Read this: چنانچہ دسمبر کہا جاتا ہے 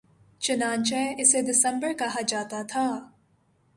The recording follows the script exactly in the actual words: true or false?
false